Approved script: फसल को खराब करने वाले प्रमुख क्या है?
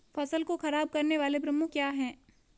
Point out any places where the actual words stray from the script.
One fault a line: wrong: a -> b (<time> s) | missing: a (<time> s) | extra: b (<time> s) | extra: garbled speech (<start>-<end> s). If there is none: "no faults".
no faults